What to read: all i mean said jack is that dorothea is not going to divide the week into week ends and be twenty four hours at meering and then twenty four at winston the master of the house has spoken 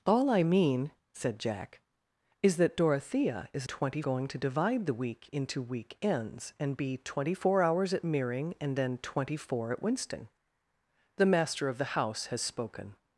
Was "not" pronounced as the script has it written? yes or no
no